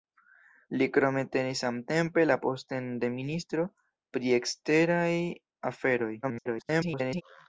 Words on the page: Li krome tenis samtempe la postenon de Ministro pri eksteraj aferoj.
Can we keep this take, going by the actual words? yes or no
no